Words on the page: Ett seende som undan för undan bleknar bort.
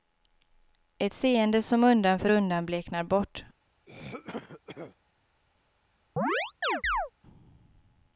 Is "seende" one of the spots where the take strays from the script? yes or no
no